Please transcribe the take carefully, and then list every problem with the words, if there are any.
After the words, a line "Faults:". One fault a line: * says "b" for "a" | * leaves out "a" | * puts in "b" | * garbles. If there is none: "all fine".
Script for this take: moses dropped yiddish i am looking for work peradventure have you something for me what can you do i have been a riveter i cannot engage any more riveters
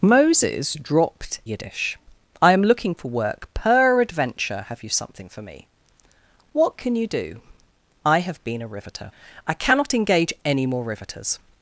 moses dropped yiddish i am looking for work peradventure have you something for me what can you do i have been a riveter i cannot engage any more riveters
Faults:
all fine